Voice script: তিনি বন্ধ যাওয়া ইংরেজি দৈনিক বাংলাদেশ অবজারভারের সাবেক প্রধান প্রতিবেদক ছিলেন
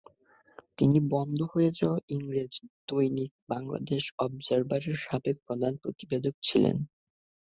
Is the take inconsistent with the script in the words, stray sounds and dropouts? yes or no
yes